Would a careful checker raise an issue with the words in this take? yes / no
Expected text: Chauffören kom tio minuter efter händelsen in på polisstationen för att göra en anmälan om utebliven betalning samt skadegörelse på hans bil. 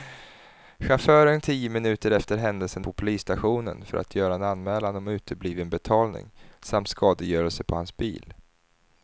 yes